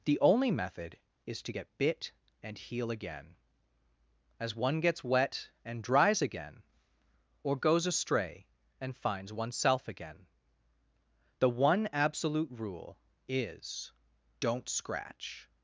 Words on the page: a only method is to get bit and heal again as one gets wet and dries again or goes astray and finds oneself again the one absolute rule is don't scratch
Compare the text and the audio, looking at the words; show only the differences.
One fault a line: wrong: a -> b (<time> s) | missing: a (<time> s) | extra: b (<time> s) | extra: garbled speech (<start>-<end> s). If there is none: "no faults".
wrong: a -> the (0.1 s)